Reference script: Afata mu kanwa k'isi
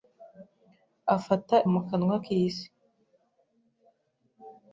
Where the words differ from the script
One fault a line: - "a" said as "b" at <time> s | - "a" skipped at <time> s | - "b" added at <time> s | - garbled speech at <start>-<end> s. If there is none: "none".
none